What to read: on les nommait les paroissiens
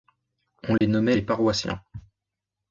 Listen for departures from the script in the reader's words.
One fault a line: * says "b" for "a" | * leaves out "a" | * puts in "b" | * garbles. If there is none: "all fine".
all fine